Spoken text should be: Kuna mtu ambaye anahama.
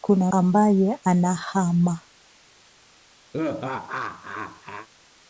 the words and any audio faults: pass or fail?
fail